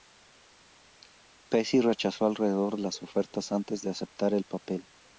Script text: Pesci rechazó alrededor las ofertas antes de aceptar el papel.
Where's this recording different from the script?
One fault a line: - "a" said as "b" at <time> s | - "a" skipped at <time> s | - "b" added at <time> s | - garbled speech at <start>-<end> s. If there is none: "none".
none